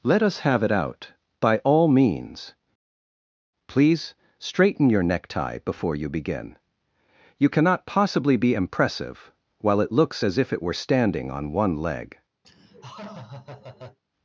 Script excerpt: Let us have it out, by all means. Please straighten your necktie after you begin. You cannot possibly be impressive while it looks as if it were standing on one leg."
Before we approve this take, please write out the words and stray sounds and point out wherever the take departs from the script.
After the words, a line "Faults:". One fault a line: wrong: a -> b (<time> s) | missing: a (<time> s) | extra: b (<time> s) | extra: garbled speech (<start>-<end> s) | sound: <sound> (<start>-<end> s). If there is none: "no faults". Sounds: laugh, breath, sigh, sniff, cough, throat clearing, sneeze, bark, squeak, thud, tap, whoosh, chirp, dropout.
Let us have it out, by all means. Please straighten your necktie before you begin. You cannot possibly be impressive while it looks as if it were standing on one leg."
Faults:
wrong: after -> before (5.6 s)
sound: laugh (12.4-14.0 s)